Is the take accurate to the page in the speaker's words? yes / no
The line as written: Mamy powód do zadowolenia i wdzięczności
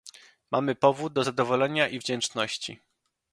yes